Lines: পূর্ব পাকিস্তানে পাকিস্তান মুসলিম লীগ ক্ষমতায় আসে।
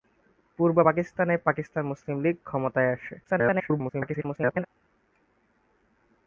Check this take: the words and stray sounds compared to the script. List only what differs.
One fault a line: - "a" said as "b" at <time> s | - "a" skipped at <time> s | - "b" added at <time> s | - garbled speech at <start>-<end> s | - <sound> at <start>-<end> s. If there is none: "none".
- garbled speech at 3.2-4.7 s